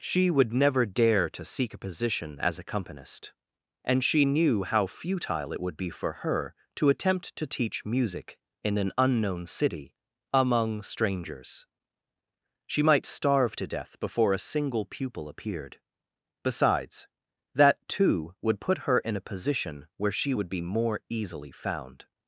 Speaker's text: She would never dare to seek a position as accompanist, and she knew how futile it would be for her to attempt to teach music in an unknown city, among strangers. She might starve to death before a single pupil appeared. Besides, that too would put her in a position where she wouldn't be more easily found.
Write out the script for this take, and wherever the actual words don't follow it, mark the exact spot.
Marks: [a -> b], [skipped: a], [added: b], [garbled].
She would never dare to seek a position as accompanist, and she knew how futile it would be for her to attempt to teach music in an unknown city, among strangers. She might starve to death before a single pupil appeared. Besides, that too would put her in a position where she [wouldn't -> would] be more easily found.